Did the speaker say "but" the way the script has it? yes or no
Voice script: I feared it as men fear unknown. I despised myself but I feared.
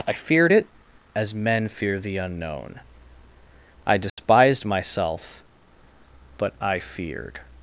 yes